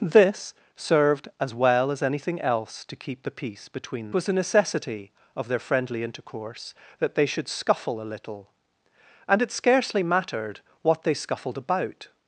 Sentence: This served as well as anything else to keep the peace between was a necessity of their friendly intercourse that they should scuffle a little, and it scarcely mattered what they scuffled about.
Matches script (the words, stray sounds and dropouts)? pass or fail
pass